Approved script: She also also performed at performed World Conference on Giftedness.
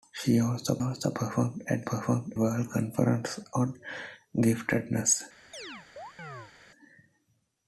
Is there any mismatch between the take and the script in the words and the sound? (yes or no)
yes